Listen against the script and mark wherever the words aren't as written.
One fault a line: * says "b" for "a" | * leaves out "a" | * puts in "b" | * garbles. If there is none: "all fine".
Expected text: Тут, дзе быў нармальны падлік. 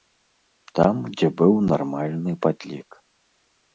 * says "Там" for "Тут"